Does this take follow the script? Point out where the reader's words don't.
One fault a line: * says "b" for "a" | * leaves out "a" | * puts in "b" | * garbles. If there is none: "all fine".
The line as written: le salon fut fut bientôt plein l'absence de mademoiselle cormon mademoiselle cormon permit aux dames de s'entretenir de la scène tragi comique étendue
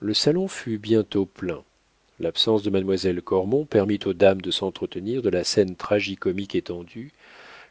* leaves out "fut"
* leaves out "mademoiselle cormon"